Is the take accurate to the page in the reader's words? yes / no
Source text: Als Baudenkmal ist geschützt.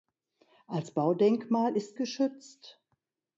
yes